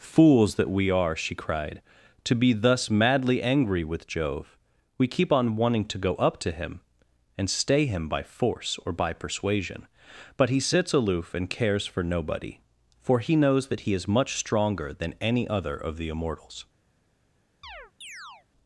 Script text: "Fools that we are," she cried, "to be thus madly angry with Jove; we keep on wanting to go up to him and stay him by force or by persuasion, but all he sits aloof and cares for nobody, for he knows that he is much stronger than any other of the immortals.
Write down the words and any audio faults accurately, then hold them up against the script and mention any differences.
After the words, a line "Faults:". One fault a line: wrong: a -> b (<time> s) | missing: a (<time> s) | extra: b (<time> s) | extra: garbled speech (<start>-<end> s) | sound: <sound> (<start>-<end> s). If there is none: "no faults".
"Fools that we are," she cried, "to be thus madly angry with Jove; we keep on wanting to go up to him and stay him by force or by persuasion, but he sits aloof and cares for nobody, for he knows that he is much stronger than any other of the immortals.
Faults:
missing: all (10.5 s)
sound: chirp (17.6-18.5 s)